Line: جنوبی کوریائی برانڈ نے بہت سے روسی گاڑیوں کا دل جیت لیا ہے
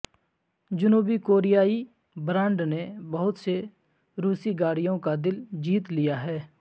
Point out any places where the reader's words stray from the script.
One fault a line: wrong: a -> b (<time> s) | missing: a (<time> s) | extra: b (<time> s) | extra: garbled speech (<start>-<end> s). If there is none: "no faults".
no faults